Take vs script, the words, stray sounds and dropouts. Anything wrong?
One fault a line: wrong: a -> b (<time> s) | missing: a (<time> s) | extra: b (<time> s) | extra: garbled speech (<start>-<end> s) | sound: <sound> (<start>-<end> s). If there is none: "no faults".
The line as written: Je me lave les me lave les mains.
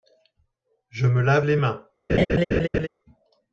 missing: me lave les (1.6 s)
sound: laugh (2.1-2.9 s)